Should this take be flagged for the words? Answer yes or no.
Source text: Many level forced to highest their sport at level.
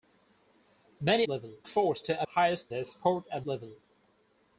no